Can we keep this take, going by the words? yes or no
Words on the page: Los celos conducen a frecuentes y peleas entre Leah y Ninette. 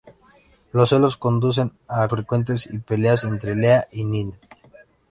yes